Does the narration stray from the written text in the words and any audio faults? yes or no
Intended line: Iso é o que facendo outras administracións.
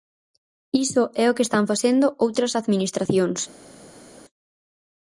yes